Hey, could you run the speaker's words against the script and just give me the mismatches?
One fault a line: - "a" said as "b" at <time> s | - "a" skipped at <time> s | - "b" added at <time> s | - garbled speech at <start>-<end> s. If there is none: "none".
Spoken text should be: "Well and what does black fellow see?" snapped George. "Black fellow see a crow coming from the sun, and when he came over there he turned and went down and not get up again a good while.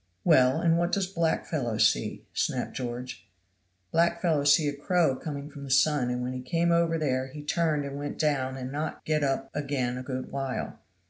none